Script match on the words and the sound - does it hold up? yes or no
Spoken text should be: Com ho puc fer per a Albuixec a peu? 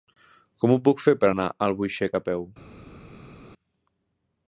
no